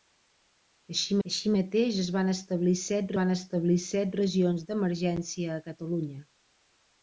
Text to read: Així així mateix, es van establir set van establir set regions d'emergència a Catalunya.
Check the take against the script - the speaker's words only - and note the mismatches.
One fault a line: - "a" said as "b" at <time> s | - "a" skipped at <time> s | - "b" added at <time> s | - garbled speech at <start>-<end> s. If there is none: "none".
none